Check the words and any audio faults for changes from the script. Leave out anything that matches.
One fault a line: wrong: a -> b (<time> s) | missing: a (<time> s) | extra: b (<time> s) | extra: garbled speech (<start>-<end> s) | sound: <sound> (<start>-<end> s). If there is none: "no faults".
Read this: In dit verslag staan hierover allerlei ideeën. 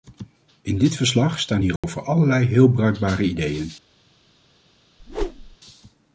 sound: dropout (1.8-1.8 s)
extra: heel bruikbare (2.4 s)
sound: whoosh (5.0-5.6 s)